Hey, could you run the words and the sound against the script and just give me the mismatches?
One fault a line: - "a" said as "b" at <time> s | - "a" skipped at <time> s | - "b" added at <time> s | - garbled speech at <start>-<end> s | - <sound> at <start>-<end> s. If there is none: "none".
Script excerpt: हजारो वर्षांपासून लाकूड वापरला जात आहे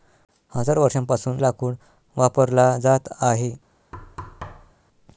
- thud at 3.9-4.8 s